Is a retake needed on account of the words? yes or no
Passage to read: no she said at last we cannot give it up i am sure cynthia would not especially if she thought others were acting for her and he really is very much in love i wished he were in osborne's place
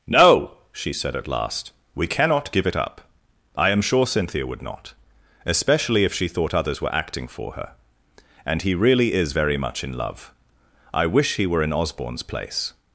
yes